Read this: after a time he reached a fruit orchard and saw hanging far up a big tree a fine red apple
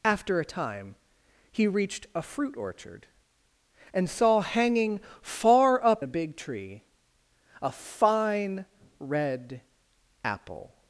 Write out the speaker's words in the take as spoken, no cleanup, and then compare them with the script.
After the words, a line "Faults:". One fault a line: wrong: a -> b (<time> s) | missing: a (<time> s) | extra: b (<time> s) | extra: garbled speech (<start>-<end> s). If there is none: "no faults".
after a time he reached a fruit orchard and saw hanging far up a big tree a fine red apple
Faults:
no faults